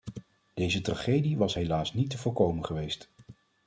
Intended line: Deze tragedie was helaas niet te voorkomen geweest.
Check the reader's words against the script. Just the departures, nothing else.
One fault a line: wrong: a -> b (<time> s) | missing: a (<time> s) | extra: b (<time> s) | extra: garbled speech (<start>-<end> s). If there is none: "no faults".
no faults